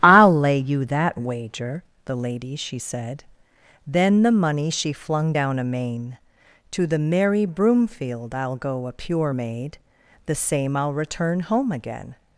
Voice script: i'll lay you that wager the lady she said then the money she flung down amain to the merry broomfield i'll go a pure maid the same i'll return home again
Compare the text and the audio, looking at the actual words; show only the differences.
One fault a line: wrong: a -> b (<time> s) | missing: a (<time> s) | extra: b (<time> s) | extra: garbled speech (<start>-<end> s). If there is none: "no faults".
no faults